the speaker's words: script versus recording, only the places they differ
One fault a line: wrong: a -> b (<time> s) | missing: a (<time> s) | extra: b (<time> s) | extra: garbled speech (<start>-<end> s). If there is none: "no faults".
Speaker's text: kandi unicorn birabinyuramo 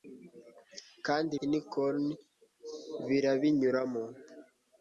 no faults